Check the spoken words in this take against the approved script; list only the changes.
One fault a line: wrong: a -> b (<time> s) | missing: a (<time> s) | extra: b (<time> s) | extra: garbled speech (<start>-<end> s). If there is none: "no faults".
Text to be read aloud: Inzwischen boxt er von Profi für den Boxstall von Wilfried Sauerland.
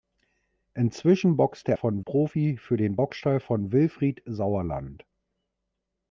no faults